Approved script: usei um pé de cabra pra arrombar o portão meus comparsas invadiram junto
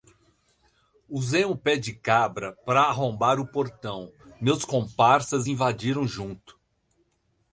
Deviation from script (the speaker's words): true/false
false